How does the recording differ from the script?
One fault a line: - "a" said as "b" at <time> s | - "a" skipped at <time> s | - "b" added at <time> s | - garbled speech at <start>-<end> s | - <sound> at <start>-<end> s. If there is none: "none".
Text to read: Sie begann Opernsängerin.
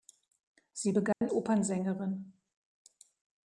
- dropout at 1.1-1.2 s